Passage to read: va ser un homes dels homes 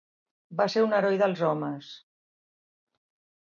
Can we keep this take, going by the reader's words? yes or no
no